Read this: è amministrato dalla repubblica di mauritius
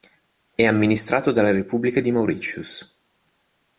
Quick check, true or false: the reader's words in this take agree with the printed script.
true